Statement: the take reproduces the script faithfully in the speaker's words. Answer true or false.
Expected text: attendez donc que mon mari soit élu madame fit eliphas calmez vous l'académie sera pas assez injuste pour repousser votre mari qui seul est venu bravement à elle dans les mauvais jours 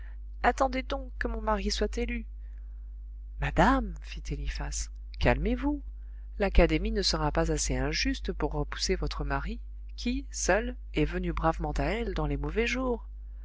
false